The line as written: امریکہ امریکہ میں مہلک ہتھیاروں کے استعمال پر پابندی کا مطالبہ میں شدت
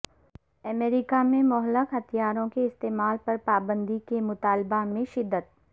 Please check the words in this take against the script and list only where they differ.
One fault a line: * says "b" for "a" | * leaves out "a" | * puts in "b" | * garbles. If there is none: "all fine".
* leaves out "امریکہ"
* says "کے" for "کا"